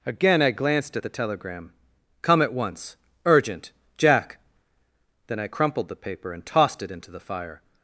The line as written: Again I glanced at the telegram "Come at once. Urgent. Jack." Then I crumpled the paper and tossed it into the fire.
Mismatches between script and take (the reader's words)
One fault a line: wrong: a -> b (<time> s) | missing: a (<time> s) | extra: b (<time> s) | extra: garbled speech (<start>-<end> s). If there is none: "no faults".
no faults